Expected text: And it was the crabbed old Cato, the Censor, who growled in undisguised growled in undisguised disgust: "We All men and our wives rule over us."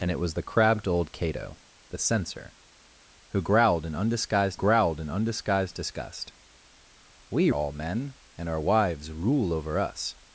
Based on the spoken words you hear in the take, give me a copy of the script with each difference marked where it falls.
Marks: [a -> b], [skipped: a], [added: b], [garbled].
And it was the crabbed old Cato, the Censor, who growled in undisguised growled in undisguised disgust: "We All men and our wives rule over us."